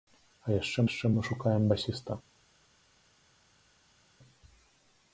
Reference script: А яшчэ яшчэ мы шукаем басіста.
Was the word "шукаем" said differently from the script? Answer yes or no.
no